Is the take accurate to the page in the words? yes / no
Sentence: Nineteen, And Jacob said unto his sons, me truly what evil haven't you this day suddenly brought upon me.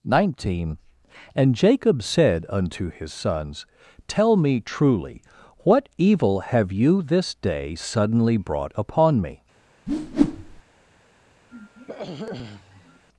no